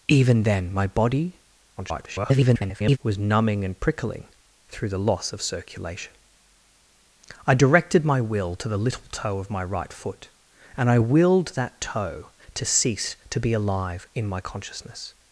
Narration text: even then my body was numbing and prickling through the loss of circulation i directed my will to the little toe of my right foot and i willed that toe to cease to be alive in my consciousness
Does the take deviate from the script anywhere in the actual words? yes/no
yes